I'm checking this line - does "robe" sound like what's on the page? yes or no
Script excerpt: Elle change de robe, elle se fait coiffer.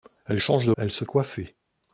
no